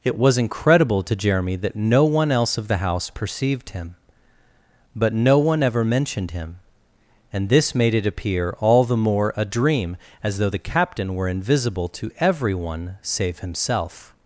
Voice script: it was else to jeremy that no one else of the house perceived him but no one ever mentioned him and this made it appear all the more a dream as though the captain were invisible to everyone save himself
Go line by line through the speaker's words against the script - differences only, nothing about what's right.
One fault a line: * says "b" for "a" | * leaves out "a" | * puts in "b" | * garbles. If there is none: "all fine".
* says "incredible" for "else"